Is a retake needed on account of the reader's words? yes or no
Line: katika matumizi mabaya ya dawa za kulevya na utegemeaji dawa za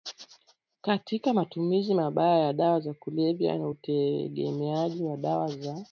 yes